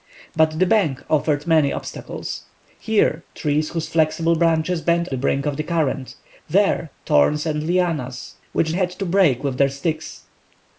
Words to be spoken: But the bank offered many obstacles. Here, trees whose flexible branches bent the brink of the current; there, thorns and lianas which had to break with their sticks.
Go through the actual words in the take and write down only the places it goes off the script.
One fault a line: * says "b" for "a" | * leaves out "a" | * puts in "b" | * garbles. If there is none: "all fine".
all fine